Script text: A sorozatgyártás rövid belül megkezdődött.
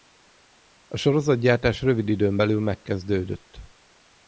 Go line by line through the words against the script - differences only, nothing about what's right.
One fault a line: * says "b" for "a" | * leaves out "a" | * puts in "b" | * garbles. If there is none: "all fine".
* puts in "időn"